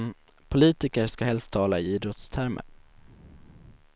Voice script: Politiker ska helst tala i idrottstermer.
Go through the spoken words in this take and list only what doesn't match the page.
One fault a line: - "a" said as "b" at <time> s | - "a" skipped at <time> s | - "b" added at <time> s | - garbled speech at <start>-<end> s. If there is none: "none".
none